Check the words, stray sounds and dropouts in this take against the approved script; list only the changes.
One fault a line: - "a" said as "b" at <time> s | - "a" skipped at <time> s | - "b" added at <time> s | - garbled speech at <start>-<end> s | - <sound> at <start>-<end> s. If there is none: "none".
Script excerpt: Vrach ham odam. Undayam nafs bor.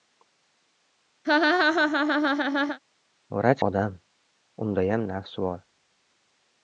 - laugh at 1.2-2.8 s
- "ham" skipped at 3.6 s